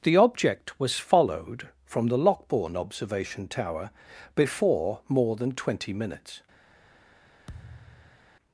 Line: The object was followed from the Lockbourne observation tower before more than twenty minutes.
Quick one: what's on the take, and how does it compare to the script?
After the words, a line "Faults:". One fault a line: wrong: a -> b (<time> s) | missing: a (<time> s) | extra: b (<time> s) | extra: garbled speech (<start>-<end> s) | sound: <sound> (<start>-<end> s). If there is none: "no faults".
The object was followed from the Lockbourne observation tower before more than twenty minutes.
Faults:
sound: thud (7.5-8.3 s)